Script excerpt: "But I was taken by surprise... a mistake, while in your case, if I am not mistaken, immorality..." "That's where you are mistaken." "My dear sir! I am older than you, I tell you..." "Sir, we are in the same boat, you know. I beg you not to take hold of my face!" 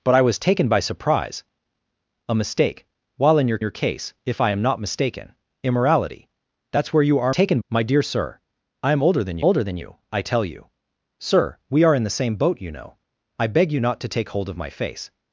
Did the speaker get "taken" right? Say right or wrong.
right